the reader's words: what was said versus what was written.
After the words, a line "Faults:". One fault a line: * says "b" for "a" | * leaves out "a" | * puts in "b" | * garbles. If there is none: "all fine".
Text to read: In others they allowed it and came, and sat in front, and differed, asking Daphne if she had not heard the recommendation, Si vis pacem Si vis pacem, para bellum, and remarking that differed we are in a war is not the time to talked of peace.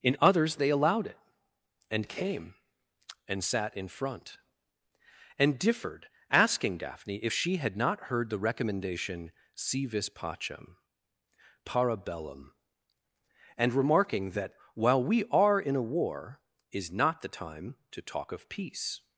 In others they allowed it and came, and sat in front, and differed, asking Daphne if she had not heard the recommendation, Si vis pacem, para bellum, and remarking that while we are in a war is not the time to talk of peace.
Faults:
* leaves out "Si vis pacem"
* says "while" for "differed"
* says "talk" for "talked"